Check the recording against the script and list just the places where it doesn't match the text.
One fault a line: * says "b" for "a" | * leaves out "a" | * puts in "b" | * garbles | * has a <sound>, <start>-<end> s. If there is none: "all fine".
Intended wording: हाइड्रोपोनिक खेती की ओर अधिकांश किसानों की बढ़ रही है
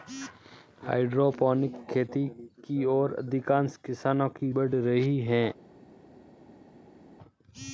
all fine